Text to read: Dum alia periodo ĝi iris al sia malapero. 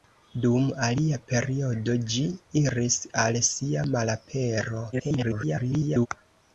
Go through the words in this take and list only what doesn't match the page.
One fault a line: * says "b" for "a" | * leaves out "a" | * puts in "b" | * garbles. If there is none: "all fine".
* garbles